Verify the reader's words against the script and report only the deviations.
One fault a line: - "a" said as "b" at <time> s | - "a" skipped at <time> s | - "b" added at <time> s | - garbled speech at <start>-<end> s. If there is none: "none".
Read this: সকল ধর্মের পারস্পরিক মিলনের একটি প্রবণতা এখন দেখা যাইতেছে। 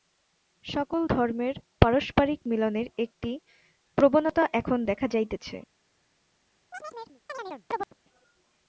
none